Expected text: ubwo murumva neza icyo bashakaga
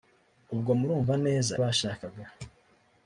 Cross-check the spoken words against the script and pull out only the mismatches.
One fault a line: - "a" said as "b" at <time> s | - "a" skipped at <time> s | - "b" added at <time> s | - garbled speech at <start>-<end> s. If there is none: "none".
- "icyo" skipped at 1.5 s